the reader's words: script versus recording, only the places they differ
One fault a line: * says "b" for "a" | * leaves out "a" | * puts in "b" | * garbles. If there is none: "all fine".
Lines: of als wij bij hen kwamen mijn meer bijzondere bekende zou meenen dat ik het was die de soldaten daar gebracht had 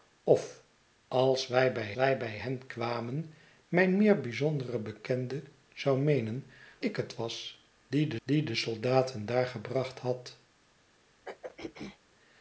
* puts in "wij bij"
* leaves out "dat"
* puts in "die de"